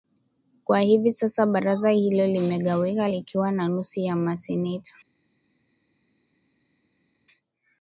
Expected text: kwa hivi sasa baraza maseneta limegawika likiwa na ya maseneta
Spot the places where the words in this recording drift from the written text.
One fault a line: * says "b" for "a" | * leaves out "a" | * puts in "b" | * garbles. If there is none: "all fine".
* says "hilo" for "maseneta"
* puts in "nusu"